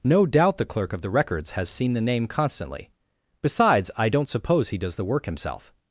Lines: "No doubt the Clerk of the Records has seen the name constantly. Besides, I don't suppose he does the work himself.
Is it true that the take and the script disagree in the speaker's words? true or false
false